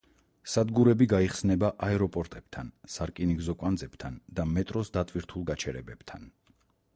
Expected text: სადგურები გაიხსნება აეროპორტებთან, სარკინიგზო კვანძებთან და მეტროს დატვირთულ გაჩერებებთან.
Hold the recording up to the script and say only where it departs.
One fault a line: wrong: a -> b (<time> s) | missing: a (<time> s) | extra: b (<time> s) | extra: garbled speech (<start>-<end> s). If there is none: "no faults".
no faults